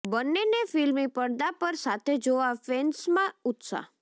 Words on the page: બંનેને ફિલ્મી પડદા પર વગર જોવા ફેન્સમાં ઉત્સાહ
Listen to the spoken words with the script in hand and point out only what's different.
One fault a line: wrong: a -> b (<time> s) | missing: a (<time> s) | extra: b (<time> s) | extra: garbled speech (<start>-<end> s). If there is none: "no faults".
wrong: વગર -> સાથે (1.8 s)